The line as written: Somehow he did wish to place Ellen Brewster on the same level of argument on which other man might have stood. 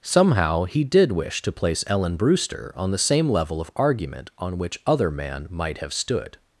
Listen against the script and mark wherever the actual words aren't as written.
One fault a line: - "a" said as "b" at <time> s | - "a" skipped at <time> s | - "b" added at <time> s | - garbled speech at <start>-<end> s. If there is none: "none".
none